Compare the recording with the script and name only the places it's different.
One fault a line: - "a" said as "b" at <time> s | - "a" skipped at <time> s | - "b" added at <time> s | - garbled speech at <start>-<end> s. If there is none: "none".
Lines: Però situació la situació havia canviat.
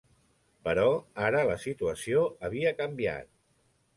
- "situació" said as "ara" at 1.2 s